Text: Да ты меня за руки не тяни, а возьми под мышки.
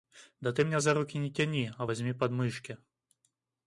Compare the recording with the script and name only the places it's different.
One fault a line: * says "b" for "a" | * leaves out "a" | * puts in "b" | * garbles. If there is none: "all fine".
all fine